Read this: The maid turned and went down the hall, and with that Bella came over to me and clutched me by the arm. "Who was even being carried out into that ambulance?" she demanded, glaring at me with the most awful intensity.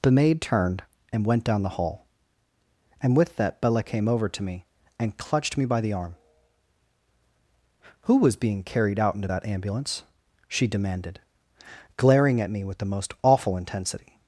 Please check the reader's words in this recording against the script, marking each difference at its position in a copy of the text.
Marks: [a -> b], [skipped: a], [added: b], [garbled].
The maid turned and went down the hall, and with that Bella came over to me and clutched me by the arm. "Who was [skipped: even] being carried out into that ambulance?" she demanded, glaring at me with the most awful intensity.